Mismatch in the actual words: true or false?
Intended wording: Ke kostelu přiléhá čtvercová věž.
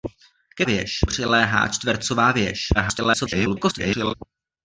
true